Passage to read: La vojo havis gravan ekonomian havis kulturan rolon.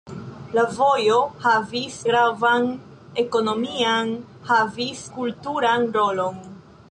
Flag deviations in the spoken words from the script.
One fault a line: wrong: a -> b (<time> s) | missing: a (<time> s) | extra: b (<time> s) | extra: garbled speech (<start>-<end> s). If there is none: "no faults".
no faults